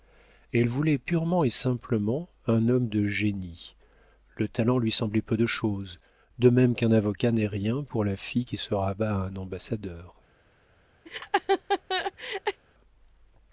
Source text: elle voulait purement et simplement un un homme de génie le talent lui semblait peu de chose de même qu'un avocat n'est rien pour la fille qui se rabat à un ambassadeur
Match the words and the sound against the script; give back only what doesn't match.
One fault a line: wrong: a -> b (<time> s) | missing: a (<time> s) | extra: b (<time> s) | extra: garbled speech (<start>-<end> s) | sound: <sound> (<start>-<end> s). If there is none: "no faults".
missing: un (2.7 s)
sound: laugh (11.1-12.6 s)